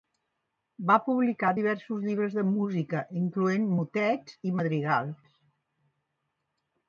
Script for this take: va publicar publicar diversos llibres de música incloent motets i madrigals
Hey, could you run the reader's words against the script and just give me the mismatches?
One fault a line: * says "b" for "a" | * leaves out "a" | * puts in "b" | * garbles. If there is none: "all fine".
* leaves out "publicar"